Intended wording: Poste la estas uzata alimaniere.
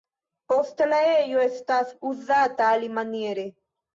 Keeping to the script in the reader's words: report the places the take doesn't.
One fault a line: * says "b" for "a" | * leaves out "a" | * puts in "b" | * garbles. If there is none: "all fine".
* puts in "ejo"